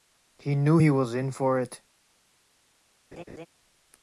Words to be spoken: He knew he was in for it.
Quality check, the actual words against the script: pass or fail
pass